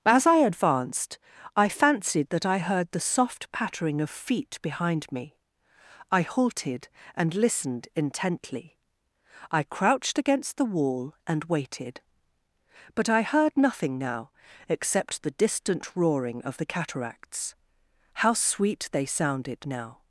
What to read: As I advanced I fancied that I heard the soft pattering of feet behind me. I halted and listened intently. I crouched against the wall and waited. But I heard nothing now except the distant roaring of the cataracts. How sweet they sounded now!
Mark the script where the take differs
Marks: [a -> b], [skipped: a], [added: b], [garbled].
As I advanced I fancied that I heard the soft pattering of feet behind me. I halted and listened intently. I crouched against the wall and waited. But I heard nothing now except the distant roaring of the cataracts. How sweet they sounded now!